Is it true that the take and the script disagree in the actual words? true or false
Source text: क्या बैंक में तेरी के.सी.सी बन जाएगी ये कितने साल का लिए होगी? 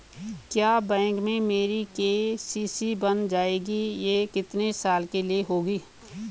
true